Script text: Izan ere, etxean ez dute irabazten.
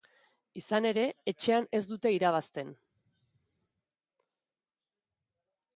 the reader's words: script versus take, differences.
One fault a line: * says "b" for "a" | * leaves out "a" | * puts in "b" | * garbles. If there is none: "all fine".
all fine